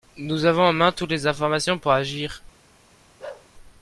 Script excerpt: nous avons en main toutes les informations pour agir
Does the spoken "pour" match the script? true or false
true